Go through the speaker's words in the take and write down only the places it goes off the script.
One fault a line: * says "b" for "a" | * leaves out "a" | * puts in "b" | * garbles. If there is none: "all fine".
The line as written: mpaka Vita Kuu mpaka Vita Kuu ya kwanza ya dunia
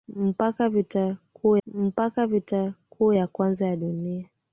all fine